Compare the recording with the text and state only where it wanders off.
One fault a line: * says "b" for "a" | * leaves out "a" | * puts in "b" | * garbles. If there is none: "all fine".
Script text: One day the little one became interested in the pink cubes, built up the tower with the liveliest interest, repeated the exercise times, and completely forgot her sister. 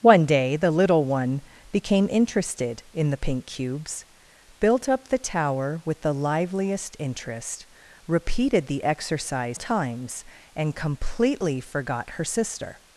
all fine